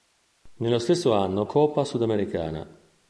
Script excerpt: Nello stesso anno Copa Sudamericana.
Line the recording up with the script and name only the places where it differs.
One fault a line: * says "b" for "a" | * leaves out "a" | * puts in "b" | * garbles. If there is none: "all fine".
all fine